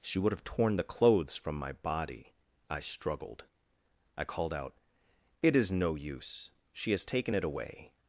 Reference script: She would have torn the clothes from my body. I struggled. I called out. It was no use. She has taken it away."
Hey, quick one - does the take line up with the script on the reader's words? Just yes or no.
no